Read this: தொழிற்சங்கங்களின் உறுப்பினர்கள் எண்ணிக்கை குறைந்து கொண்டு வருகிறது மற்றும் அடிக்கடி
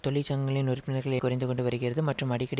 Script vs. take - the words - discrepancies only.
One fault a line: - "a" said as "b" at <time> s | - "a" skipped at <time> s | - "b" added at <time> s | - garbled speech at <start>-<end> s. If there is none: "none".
- "எண்ணிக்கை" skipped at 1.2 s